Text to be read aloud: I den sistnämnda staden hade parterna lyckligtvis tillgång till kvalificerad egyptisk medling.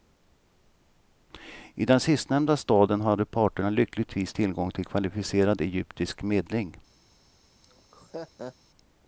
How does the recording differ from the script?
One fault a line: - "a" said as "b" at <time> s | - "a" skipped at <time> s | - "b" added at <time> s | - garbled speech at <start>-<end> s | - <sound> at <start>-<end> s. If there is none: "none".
- laugh at 7.6-8.6 s